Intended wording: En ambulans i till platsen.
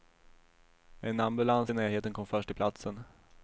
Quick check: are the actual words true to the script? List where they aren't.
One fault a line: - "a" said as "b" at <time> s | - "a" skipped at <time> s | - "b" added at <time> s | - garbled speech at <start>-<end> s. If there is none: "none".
- "närheten kom först" added at 1.7 s